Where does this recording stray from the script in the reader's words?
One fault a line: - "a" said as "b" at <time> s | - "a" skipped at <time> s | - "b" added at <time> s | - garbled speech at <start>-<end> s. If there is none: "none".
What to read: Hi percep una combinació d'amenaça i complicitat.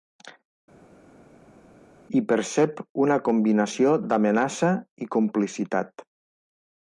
none